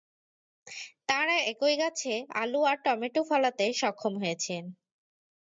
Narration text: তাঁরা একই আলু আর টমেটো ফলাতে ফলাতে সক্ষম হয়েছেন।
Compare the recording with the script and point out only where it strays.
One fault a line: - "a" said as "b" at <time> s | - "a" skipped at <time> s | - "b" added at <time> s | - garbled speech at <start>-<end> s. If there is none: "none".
- "গাছে" added at 1.8 s
- "ফলাতে" skipped at 3.6 s